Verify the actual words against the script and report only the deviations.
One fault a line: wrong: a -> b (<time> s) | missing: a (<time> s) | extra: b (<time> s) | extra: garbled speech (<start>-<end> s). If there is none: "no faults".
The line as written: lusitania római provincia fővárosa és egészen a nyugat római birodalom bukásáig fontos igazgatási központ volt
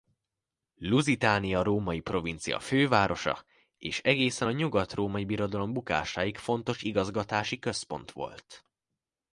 no faults